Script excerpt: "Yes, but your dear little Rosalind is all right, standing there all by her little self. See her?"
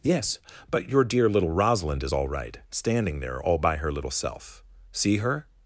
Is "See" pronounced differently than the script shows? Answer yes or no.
no